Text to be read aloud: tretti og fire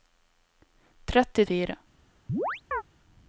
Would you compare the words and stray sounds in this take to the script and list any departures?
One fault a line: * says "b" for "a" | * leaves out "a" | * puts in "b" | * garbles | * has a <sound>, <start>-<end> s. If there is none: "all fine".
* has a chirp, 2.3-2.8 s